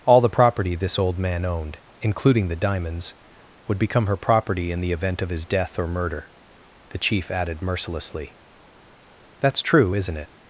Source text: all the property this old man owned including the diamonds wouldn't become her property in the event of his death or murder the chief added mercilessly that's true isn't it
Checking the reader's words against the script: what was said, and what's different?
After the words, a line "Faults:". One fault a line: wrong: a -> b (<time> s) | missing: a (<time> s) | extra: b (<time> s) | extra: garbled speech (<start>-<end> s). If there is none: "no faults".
all the property this old man owned including the diamonds would become her property in the event of his death or murder the chief added mercilessly that's true isn't it
Faults:
wrong: wouldn't -> would (3.7 s)